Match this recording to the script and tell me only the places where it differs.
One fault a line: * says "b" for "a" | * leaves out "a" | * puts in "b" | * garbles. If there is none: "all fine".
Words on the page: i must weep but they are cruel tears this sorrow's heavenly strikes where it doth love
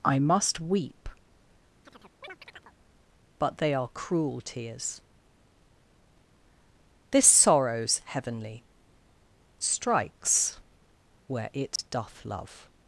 all fine